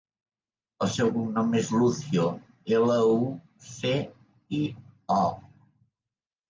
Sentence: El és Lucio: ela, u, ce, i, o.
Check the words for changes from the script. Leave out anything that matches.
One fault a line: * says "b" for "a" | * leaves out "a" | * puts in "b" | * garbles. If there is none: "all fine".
* puts in "seu cognom"